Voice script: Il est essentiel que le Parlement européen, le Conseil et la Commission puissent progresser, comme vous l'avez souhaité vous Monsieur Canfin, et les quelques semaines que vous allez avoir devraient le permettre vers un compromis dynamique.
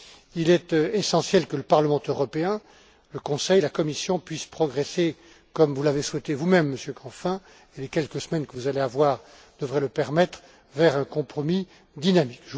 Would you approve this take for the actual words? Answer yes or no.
no